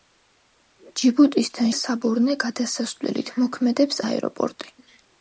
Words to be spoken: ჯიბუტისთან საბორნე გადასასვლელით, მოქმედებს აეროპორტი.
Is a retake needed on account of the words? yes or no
no